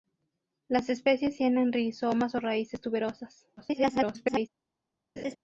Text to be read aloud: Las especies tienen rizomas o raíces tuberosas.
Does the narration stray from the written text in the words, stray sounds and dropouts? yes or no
yes